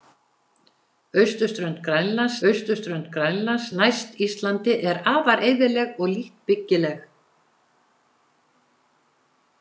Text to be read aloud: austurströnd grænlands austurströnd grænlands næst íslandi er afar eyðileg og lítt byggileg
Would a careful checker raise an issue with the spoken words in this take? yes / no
no